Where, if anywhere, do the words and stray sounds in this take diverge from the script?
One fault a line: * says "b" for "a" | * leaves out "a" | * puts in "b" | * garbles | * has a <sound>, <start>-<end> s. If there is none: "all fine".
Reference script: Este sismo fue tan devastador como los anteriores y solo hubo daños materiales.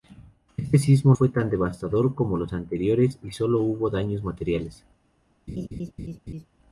* has a laugh, 5.5-6.5 s